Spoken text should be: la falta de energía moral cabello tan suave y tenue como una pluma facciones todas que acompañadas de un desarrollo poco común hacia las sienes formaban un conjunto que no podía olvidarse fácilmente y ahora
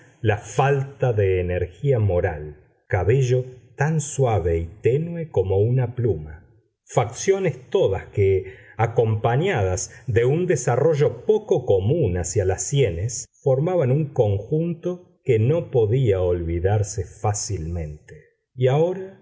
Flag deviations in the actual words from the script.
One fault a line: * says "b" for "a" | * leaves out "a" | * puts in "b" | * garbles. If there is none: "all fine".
all fine